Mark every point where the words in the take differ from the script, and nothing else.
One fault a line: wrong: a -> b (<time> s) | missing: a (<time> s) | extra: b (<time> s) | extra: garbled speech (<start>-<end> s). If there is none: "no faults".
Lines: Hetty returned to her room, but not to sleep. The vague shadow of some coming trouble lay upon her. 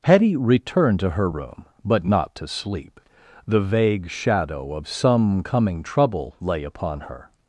no faults